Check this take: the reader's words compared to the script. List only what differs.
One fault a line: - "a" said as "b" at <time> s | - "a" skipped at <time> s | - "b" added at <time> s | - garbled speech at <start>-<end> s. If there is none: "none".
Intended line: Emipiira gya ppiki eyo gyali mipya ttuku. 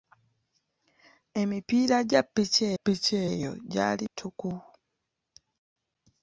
- "ppiki" added at 2.7 s
- "mipya" skipped at 4.0 s